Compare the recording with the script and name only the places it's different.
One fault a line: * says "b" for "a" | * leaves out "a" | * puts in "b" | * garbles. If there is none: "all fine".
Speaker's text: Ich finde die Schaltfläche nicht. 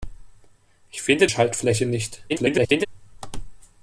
* leaves out "die"
* garbles